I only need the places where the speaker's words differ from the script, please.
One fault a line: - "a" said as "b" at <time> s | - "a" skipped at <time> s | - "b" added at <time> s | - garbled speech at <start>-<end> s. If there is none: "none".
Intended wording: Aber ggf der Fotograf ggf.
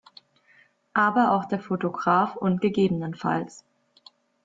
- "ggf" said as "auch" at 1.3 s
- "und" added at 2.4 s